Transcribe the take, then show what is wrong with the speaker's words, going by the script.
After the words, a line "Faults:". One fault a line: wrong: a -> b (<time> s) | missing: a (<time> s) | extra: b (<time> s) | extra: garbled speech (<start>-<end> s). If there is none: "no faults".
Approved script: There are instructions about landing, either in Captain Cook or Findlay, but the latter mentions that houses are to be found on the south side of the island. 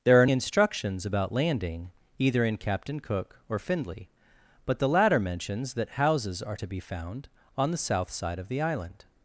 There are instructions about landing, either in Captain Cook or Findlay, but the latter mentions that houses are to be found on the south side of the island.
Faults:
no faults